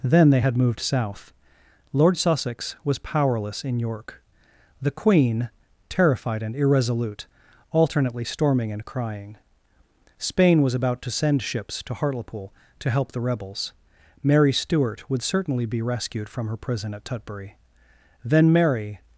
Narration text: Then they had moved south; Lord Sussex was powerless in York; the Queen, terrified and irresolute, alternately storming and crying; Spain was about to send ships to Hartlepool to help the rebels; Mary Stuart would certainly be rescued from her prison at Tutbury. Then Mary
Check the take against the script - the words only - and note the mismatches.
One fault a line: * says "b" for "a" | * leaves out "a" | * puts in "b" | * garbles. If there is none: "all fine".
all fine